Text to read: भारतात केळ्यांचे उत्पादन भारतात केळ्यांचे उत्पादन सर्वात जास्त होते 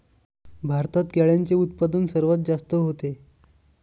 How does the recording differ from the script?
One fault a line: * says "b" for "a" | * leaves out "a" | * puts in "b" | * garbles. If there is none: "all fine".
* leaves out "भारतात केळ्यांचे उत्पादन"